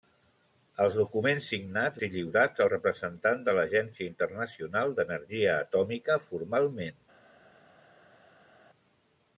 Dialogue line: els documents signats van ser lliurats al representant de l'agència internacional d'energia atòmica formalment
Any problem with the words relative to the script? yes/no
yes